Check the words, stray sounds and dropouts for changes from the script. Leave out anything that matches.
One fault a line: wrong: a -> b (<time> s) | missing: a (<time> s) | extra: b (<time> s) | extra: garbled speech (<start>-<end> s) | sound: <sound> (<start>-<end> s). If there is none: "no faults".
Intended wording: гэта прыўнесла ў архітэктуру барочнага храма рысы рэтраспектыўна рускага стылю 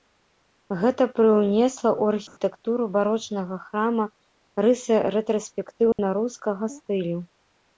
sound: dropout (2.3-2.4 s)
sound: dropout (5.9-6.0 s)